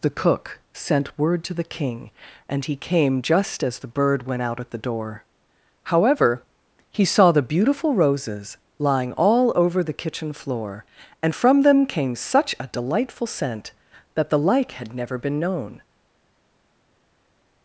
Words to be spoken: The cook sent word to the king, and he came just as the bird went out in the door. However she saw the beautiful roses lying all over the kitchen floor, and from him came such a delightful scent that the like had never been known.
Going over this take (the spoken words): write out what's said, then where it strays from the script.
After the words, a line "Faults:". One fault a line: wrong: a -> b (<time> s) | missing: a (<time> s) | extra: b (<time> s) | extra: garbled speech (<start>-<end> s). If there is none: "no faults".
The cook sent word to the king, and he came just as the bird went out at the door. However he saw the beautiful roses lying all over the kitchen floor, and from them came such a delightful scent that the like had never been known.
Faults:
wrong: in -> at (4.6 s)
wrong: she -> he (6.9 s)
wrong: him -> them (11.6 s)